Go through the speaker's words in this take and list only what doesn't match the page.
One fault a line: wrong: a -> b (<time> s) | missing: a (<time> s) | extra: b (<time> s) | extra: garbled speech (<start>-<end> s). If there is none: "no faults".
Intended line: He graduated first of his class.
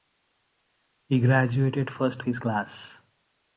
missing: of (2.2 s)